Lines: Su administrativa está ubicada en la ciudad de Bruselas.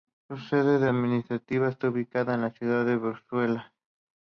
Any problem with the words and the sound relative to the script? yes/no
yes